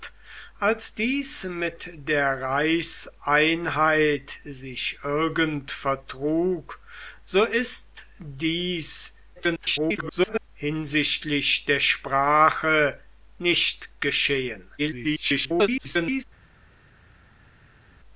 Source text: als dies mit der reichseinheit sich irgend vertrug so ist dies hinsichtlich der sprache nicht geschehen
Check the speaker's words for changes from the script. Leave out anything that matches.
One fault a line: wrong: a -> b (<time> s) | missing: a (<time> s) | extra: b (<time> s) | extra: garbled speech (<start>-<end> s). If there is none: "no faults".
extra: garbled speech (9.3-10.5 s)
extra: garbled speech (14.8-16.2 s)